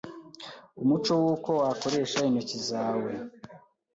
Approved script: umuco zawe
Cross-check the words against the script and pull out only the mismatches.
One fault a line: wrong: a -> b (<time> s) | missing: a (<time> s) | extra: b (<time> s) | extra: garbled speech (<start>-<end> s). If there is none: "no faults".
extra: w'uko wakoresha intoki (1.2 s)